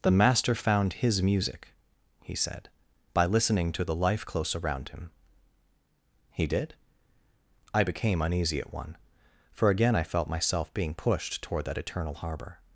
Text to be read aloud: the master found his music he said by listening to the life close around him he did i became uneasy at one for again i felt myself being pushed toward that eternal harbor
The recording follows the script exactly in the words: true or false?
true